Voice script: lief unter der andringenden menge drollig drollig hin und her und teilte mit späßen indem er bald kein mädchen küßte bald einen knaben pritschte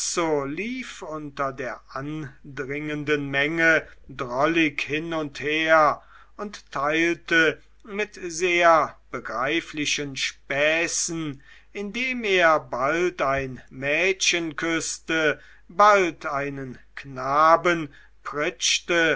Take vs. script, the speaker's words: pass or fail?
fail